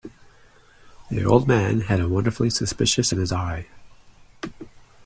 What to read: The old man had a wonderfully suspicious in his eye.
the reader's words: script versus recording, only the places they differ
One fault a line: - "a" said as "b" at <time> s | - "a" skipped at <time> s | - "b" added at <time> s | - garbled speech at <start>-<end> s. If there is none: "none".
none